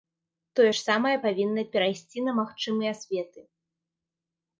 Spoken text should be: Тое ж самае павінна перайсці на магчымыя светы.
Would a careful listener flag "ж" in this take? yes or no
no